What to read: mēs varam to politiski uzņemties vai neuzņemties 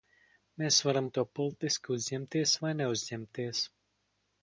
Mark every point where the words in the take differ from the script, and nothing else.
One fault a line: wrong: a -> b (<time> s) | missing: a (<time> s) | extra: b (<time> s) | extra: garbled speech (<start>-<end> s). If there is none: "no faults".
no faults